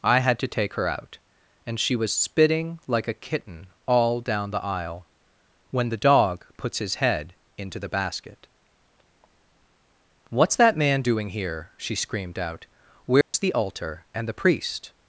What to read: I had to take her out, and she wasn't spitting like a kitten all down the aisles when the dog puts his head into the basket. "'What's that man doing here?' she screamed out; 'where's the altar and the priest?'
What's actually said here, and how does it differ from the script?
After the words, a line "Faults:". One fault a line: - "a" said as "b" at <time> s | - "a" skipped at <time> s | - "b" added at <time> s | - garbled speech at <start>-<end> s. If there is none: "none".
I had to take her out, and she was spitting like a kitten all down the aisle when the dog puts his head into the basket. "'What's that man doing here?' she screamed out; 'where's the altar and the priest?'
Faults:
- "wasn't" said as "was" at 1.9 s
- "aisles" said as "aisle" at 4.6 s